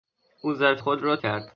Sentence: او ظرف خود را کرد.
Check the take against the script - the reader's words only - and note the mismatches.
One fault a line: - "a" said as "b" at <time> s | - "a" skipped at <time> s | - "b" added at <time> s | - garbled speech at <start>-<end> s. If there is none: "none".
none